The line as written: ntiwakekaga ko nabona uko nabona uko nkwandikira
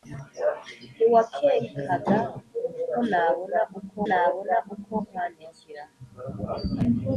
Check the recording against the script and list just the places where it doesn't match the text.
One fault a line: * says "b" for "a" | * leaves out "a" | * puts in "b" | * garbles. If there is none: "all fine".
all fine